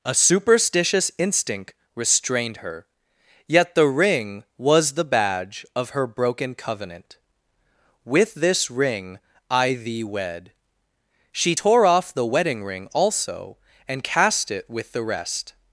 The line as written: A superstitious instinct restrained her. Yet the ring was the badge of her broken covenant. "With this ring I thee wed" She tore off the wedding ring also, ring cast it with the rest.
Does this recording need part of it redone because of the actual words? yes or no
yes